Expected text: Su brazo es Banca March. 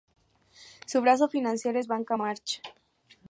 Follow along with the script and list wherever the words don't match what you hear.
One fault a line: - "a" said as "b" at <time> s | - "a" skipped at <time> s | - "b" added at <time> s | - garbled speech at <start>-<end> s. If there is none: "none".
- "financiero" added at 1.3 s